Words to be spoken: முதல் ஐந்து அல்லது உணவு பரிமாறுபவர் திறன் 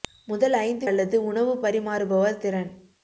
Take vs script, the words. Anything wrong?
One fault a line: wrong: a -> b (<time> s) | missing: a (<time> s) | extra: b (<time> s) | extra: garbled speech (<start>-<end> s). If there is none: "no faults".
no faults